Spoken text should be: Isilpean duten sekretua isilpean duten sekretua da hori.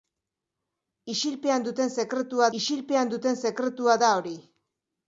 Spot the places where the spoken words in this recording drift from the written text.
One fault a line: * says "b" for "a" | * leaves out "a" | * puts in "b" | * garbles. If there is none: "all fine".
all fine